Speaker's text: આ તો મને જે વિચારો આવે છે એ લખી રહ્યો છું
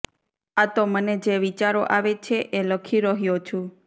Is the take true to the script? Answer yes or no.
yes